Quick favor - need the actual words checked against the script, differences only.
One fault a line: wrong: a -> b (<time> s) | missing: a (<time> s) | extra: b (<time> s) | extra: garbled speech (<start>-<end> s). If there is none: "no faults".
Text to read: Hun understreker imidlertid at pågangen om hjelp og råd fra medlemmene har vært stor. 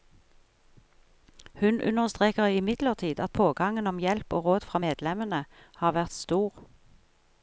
no faults